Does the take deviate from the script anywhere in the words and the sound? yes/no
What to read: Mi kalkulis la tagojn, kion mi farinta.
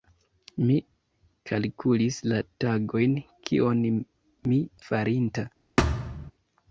yes